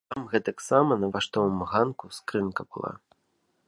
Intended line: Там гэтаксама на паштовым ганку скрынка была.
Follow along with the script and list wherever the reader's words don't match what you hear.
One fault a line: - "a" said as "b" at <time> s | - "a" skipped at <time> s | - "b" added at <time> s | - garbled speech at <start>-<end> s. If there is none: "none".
none